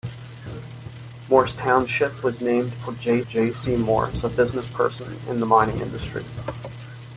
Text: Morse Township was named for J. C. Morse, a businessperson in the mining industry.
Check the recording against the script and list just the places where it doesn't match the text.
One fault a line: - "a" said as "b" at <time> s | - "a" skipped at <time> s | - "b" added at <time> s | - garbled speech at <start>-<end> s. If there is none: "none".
- "J" added at 3.2 s